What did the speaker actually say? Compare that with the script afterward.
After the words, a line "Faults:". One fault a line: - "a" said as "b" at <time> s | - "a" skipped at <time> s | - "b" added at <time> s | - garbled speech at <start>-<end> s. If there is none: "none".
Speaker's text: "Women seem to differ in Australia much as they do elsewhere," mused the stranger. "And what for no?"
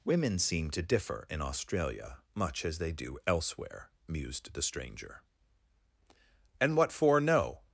"Women seem to differ in Australia much as they do elsewhere," mused the stranger. "And what for no?"
Faults:
none